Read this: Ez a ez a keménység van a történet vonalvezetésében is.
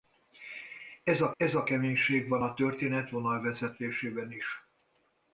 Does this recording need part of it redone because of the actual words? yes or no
no